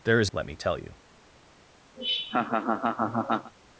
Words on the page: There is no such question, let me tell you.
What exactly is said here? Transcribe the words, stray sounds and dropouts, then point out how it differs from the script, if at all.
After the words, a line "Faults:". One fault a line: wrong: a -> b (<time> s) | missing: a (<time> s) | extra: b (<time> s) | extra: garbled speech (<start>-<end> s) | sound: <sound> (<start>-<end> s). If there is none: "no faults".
There is let me tell you.
Faults:
missing: no such question (0.3 s)
sound: laugh (2.0-3.5 s)